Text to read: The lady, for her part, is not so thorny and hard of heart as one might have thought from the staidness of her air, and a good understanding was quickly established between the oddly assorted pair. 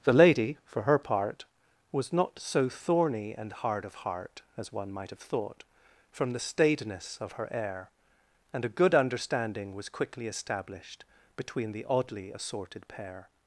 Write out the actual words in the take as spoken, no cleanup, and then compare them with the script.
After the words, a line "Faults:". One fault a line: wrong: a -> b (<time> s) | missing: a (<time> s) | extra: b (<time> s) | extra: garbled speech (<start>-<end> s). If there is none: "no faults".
The lady, for her part, was not so thorny and hard of heart as one might have thought from the staidness of her air, and a good understanding was quickly established between the oddly assorted pair.
Faults:
wrong: is -> was (1.9 s)